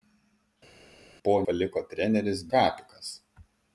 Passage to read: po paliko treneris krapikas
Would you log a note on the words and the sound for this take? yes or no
no